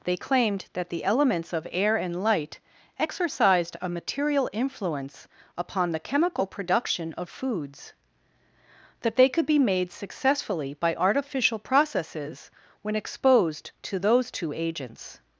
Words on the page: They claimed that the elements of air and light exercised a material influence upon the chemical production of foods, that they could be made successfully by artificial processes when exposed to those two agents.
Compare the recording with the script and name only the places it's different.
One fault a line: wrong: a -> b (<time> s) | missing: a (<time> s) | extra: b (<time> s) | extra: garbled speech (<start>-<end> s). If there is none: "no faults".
no faults